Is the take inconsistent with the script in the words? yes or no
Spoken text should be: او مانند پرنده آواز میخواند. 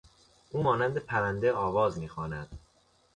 no